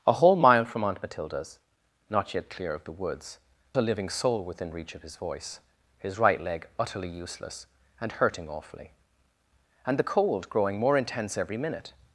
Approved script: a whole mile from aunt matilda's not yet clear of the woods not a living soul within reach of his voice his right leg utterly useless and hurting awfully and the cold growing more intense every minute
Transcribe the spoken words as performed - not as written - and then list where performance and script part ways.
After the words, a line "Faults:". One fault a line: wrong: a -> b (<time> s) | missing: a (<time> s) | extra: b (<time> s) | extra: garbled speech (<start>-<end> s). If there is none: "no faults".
a whole mile from aunt matilda's not yet clear of the woods a living soul within reach of his voice his right leg utterly useless and hurting awfully and the cold growing more intense every minute
Faults:
missing: not (3.4 s)